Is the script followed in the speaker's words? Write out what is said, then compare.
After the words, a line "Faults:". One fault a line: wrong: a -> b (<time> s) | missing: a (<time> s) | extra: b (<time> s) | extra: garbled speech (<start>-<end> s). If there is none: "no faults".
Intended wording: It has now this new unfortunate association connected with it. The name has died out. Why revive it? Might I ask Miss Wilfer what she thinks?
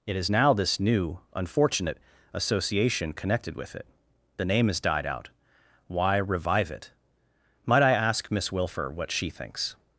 It is now this new unfortunate association connected with it. The name has died out. Why revive it? Might I ask Miss Wilfer what she thinks?
Faults:
wrong: has -> is (0.1 s)